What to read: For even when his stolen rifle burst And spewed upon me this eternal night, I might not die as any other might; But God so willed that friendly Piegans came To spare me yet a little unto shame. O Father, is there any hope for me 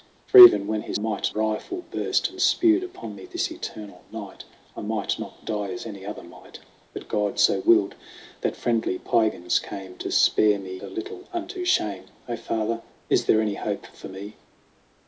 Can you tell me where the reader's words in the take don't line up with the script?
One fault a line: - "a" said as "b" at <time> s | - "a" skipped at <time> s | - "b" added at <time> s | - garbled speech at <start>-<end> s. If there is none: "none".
- "stolen" said as "might" at 1.0 s
- "yet" skipped at 10.8 s